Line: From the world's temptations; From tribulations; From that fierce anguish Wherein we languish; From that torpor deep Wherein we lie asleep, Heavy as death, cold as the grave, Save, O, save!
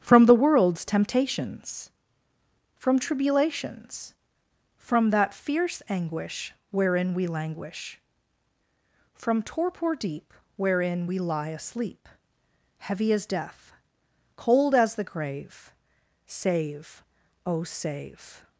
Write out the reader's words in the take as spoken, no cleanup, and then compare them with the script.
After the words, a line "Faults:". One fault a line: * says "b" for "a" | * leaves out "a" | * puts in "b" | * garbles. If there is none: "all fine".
From the world's temptations; From tribulations; From that fierce anguish Wherein we languish; From torpor deep Wherein we lie asleep, Heavy as death, cold as the grave, Save, O, save!
Faults:
* leaves out "that"